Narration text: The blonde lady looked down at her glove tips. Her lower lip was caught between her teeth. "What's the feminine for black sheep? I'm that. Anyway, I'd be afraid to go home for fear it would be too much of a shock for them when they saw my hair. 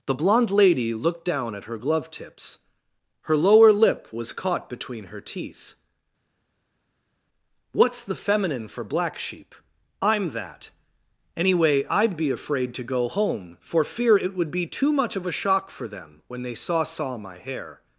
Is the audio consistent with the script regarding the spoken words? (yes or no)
no